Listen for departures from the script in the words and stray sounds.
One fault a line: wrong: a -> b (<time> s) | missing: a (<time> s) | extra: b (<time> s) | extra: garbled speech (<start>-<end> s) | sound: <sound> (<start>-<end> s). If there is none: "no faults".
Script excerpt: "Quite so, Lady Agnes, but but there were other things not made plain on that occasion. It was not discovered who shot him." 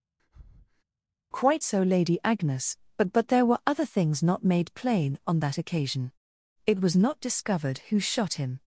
sound: breath (0.2-0.8 s)